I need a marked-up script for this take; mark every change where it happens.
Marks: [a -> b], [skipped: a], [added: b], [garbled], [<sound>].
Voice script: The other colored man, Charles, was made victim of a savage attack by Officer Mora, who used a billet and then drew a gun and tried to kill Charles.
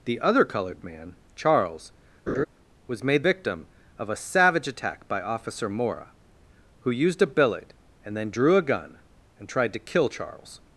The other colored man, Charles, [laugh] was made victim of a savage attack by Officer Mora, who used a billet and then drew a gun and tried to kill Charles.